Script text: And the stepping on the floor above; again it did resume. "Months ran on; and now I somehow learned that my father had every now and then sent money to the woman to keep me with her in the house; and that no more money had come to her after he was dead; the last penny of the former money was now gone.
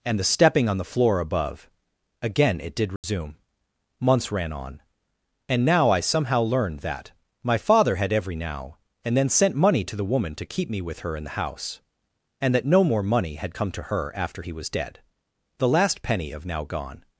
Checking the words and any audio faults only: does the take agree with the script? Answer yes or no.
no